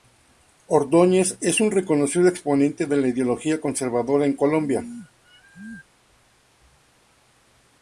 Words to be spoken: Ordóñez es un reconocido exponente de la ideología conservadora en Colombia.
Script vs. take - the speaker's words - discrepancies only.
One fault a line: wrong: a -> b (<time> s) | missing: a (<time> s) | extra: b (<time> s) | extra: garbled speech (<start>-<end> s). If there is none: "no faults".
no faults